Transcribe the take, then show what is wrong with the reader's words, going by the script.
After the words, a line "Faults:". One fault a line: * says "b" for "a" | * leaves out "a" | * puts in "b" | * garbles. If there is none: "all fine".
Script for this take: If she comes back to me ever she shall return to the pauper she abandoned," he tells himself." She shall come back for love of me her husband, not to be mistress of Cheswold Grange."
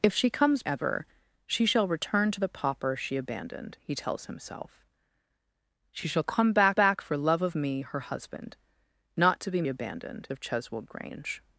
If she comes ever she shall return to the pauper she abandoned," he tells himself." She shall come back back for love of me her husband, not to be abandoned of Cheswold Grange."
Faults:
* leaves out "back to me"
* puts in "back"
* says "abandoned" for "mistress"